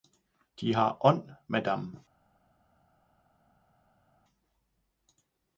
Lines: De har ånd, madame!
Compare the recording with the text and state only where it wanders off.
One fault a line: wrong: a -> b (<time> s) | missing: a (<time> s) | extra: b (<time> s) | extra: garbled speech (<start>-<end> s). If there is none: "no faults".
no faults